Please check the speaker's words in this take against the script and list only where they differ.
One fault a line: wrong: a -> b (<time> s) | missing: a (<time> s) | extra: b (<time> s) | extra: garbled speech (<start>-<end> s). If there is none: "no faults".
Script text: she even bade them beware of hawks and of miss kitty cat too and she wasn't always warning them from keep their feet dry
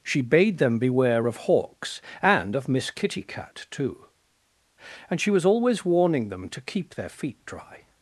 missing: even (0.2 s)
wrong: wasn't -> was (5.3 s)
wrong: from -> to (6.5 s)